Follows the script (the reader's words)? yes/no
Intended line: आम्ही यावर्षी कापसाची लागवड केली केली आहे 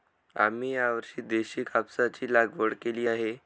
no